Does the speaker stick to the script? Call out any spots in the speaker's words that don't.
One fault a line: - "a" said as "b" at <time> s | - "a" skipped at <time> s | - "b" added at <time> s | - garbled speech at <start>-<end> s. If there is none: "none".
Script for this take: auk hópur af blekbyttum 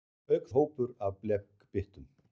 none